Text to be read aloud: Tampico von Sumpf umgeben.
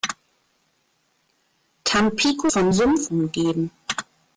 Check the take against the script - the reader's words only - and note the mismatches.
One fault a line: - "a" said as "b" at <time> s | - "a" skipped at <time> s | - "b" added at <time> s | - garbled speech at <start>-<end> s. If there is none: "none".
none